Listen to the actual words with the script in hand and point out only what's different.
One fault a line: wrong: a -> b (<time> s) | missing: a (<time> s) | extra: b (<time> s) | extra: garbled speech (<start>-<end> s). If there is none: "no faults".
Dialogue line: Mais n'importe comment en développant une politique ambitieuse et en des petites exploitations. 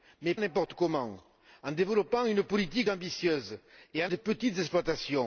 no faults